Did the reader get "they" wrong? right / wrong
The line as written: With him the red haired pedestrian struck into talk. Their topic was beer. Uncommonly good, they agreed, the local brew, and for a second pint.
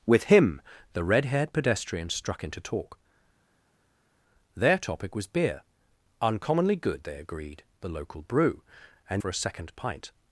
right